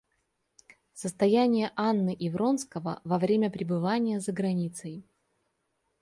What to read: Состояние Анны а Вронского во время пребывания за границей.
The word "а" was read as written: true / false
false